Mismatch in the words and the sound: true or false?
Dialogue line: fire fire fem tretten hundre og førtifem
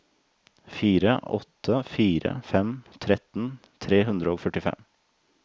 true